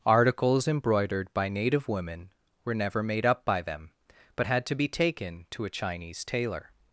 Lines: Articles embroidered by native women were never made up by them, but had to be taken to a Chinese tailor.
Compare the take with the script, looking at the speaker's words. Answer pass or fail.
pass